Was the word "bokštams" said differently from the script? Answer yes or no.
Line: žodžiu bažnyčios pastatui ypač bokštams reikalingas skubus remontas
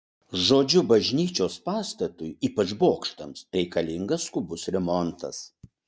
no